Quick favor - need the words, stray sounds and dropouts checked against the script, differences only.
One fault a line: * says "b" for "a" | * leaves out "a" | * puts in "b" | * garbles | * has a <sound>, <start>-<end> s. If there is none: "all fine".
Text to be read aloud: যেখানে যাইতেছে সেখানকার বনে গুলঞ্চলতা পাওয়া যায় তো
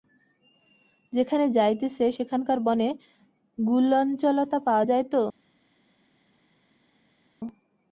all fine